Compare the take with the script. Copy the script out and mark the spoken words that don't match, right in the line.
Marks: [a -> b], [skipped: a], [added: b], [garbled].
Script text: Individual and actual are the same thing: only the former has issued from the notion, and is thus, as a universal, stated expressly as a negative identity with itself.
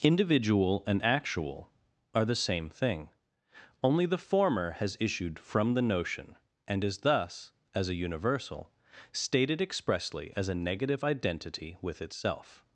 Individual and actual are the same thing: only the former has issued from the notion, and is thus, as a universal, stated expressly as a negative identity with itself.